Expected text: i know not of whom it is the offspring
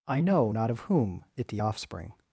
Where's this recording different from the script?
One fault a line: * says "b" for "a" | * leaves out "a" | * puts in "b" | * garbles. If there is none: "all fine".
* leaves out "is"